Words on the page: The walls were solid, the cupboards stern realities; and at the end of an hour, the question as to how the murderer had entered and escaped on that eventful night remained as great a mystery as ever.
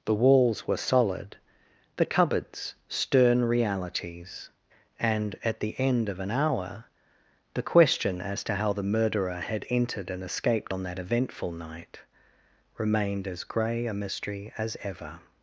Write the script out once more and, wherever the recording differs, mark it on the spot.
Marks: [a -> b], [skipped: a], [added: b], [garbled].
The walls were solid, the cupboards stern realities; and at the end of an hour, the question as to how the murderer had entered and escaped on that eventful night remained as [great -> grey] a mystery as ever.